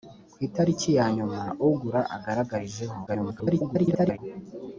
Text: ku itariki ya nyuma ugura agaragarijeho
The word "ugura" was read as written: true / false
true